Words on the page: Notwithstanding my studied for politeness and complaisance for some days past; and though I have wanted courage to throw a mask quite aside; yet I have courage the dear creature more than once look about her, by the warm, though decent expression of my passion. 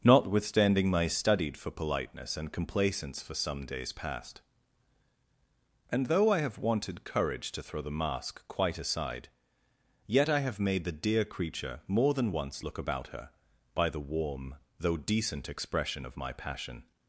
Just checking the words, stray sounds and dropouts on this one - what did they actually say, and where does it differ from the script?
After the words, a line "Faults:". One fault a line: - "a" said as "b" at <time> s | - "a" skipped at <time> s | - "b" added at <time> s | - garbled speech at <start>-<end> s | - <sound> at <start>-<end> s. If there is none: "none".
Notwithstanding my studied for politeness and complaisance for some days past; and though I have wanted courage to throw the mask quite aside; yet I have made the dear creature more than once look about her, by the warm, though decent expression of my passion.
Faults:
- "a" said as "the" at 7.8 s
- "courage" said as "made" at 10.6 s